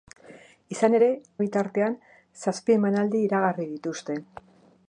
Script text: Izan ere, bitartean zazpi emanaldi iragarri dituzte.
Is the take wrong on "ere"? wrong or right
right